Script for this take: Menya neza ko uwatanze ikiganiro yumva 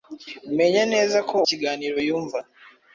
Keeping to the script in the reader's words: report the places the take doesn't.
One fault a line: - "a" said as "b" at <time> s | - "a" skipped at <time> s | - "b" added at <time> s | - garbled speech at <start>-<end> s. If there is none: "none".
- "uwatanze" skipped at 1.4 s